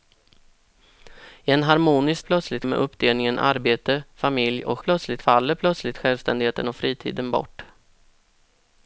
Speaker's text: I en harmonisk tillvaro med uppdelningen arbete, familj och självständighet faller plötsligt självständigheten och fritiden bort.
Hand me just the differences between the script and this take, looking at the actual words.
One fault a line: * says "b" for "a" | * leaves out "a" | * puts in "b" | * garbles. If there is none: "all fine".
* says "plötsligt" for "tillvaro"
* says "plötsligt" for "självständighet"